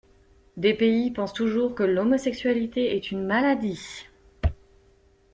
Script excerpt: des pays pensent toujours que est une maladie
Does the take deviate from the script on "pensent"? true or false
false